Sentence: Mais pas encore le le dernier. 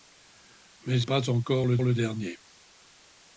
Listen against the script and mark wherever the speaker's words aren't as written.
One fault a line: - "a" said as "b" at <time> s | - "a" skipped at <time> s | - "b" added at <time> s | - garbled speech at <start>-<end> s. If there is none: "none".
none